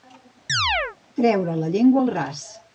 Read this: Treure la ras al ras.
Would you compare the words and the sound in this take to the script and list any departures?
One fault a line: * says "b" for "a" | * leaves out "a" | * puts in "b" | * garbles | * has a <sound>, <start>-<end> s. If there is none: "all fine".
* has a chirp, 0.5-1.0 s
* says "llengua" for "ras"